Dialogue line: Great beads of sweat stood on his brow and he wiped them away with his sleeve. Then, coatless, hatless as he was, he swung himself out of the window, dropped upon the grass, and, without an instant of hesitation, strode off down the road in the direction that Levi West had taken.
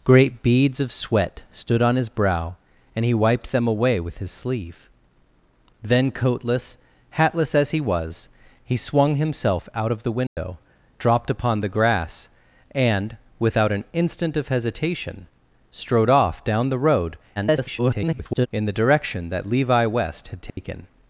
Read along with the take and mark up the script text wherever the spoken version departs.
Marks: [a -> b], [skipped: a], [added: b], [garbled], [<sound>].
Great beads of sweat stood on his brow and he wiped them away with his sleeve. Then, coatless, hatless as he was, he swung himself out of the window, [dropout] dropped upon the grass, and, without an instant of hesitation, strode off down the road [garbled] in the direction that Levi West had taken. [dropout]